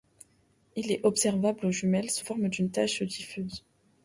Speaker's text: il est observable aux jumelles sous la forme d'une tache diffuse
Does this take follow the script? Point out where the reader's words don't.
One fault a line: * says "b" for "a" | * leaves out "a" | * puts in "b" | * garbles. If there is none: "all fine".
* leaves out "la"